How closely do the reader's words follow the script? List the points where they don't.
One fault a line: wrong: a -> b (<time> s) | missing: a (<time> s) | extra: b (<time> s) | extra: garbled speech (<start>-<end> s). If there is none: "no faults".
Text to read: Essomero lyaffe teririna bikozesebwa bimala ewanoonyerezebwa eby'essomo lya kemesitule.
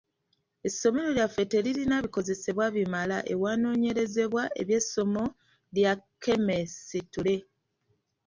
no faults